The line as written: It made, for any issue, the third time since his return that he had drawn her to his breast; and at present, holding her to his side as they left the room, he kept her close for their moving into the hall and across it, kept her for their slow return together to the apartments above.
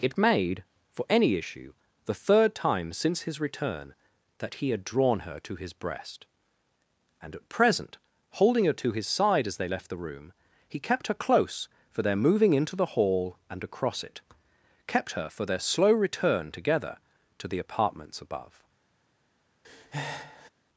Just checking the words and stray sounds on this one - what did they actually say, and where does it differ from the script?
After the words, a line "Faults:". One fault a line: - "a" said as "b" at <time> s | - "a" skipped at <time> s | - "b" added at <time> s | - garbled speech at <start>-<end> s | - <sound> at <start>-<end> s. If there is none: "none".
It made, for any issue, the third time since his return that he had drawn her to his breast; and at present, holding her to his side as they left the room, he kept her close for their moving into the hall and across it, kept her for their slow return together to the apartments above.
Faults:
- breath at 19.6-20.5 s